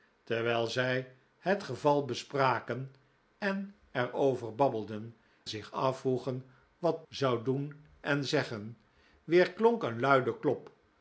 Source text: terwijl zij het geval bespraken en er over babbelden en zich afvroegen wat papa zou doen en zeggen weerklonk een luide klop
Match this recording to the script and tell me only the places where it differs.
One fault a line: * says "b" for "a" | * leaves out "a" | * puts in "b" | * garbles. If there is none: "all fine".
* leaves out "en"
* leaves out "papa"